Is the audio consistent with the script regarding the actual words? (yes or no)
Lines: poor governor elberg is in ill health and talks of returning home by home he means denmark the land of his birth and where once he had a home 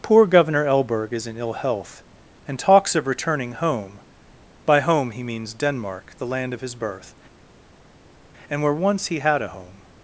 yes